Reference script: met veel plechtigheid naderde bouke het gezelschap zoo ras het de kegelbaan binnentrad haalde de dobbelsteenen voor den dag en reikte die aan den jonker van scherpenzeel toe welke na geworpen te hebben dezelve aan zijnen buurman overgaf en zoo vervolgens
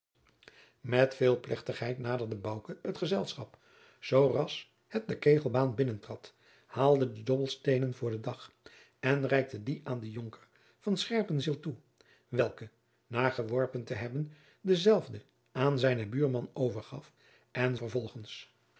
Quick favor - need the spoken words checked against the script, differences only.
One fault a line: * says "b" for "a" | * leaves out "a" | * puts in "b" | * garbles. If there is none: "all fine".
* leaves out "zoo"